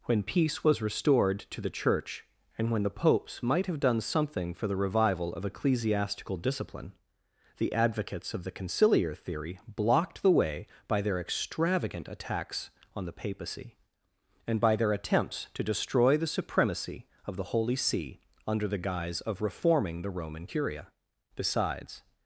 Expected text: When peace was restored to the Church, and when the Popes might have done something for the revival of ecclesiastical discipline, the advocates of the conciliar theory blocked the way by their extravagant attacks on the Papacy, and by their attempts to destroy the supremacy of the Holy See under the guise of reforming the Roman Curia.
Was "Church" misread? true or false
false